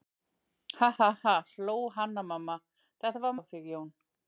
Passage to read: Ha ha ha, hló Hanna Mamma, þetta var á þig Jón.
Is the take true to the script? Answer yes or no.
yes